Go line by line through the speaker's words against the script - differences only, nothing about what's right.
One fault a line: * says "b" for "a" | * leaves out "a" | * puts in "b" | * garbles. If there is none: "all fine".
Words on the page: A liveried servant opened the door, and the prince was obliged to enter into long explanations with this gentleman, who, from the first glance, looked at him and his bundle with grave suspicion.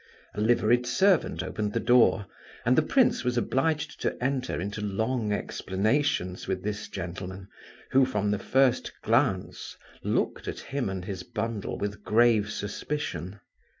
all fine